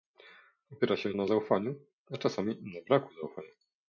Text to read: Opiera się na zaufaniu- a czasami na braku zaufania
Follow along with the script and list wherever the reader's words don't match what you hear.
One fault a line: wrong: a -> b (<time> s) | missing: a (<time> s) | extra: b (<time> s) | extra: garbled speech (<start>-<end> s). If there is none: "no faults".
no faults